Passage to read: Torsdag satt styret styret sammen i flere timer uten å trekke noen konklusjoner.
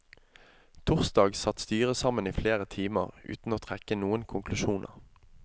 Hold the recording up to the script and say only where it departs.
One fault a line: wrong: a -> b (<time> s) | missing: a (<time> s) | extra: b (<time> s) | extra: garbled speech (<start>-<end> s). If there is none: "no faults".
missing: styret (2.0 s)